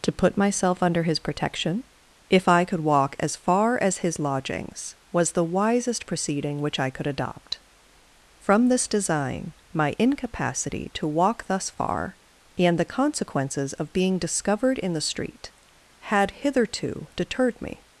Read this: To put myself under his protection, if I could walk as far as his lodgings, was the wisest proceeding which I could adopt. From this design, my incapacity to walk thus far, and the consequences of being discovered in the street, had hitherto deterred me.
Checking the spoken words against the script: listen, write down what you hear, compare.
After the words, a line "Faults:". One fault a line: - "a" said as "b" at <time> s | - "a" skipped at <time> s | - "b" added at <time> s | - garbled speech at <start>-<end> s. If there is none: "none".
To put myself under his protection, if I could walk as far as his lodgings, was the wisest proceeding which I could adopt. From this design, my incapacity to walk thus far, and the consequences of being discovered in the street, had hitherto deterred me.
Faults:
none